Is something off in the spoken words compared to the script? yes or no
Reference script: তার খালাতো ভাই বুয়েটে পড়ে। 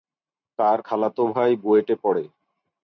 no